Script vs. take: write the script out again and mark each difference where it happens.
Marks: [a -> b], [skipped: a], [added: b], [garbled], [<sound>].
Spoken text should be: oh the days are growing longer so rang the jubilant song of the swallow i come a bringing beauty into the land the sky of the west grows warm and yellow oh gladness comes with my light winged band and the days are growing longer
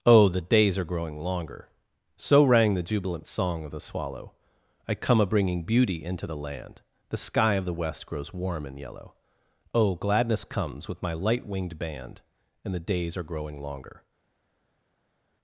oh the days are growing longer so rang the jubilant song of the swallow i come a bringing beauty into the land the sky of the west grows warm and yellow oh gladness comes with my light winged band and the days are growing longer